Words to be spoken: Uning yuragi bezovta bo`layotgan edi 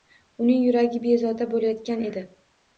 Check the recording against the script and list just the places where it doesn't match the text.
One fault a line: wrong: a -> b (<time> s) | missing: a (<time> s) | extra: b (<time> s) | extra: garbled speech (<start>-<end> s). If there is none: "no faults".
no faults